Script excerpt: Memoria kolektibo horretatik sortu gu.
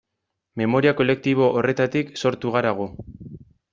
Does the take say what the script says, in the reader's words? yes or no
no